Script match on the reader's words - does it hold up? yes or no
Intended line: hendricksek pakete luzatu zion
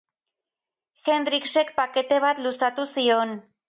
no